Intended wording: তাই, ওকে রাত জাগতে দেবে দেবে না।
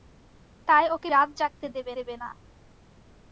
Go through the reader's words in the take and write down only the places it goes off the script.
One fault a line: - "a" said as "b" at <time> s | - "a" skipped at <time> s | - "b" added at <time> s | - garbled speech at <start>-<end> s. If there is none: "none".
none